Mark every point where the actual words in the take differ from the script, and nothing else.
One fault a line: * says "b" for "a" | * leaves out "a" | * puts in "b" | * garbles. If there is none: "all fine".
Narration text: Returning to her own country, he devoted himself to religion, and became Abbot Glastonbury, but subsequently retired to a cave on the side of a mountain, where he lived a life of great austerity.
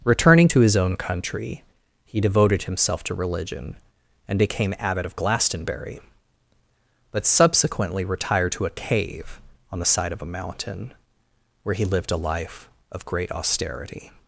* says "his" for "her"
* puts in "of"